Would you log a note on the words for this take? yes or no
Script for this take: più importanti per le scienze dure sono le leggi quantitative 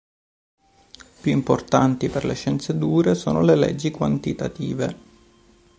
no